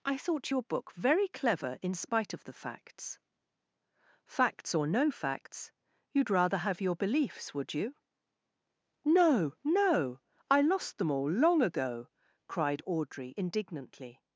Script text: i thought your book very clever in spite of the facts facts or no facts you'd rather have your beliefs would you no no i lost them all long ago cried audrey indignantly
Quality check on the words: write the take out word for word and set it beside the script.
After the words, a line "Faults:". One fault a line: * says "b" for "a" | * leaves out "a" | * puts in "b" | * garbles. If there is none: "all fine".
i thought your book very clever in spite of the facts facts or no facts you'd rather have your beliefs would you no no i lost them all long ago cried audrey indignantly
Faults:
all fine